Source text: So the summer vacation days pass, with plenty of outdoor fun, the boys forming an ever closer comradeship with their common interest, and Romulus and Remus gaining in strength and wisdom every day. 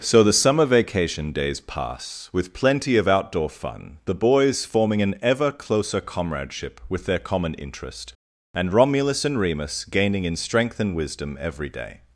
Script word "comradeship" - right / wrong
right